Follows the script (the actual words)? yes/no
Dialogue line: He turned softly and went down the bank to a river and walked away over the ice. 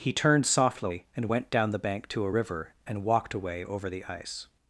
yes